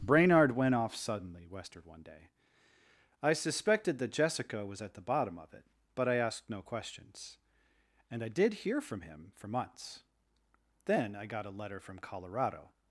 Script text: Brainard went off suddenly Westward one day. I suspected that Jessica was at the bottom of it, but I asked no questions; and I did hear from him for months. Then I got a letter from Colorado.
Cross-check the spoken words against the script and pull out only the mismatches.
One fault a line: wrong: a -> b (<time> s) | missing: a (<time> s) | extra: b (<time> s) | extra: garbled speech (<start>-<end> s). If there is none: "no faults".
no faults